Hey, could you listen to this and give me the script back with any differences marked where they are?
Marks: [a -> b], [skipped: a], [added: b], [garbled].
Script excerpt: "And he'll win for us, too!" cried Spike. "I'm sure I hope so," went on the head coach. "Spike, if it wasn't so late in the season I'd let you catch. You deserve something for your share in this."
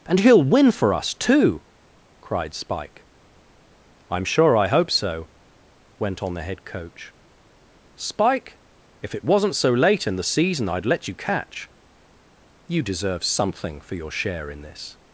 "And he'll win for us, too!" cried Spike. "I'm sure I hope so," went on the head coach. "Spike, if it wasn't so late in the season I'd let you catch. You deserve something for your share in this."